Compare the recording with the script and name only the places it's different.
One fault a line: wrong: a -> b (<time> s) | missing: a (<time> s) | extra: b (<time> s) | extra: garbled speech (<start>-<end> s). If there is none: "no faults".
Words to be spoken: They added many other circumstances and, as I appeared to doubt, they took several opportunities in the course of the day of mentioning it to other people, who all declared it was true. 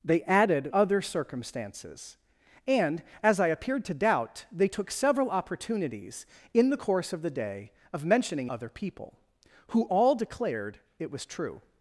missing: many (0.7 s)
missing: it to (8.5 s)